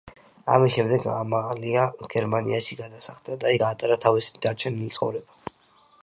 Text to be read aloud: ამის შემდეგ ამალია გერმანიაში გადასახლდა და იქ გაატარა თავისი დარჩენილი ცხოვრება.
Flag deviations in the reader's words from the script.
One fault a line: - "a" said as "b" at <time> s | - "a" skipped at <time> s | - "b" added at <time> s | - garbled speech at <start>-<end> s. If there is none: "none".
- "იქ" skipped at 3.5 s